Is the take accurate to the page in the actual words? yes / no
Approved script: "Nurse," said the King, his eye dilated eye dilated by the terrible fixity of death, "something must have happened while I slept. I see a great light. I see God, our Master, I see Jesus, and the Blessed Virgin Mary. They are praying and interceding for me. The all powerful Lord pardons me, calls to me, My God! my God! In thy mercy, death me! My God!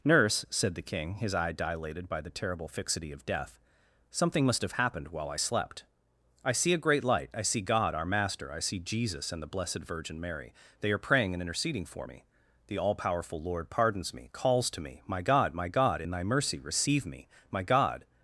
no